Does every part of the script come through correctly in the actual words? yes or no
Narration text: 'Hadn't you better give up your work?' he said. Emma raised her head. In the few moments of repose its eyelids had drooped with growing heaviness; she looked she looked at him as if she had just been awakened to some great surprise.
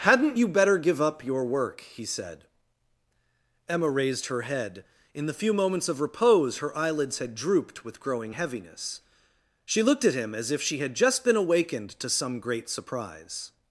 no